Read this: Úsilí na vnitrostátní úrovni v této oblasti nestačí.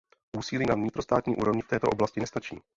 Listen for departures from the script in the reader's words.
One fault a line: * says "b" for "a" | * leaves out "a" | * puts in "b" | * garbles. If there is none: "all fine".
all fine